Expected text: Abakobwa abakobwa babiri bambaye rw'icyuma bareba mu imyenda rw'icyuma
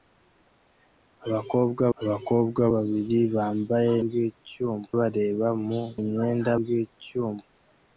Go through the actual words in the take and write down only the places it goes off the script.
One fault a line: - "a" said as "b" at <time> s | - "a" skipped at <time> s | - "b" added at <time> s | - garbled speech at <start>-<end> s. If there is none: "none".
none